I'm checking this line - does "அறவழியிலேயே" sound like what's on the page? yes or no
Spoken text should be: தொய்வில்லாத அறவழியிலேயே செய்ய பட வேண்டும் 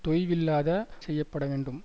no